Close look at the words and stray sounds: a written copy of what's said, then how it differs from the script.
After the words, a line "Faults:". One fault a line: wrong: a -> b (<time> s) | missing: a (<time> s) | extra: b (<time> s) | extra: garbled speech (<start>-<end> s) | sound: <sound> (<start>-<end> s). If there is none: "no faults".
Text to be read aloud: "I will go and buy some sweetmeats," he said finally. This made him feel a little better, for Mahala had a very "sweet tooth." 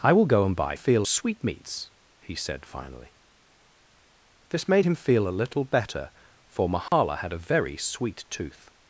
"I will go and buy feel sweetmeats," he said finally. This made him feel a little better, for Mahala had a very "sweet tooth."
Faults:
wrong: some -> feel (0.7 s)
sound: dropout (6.9-6.9 s)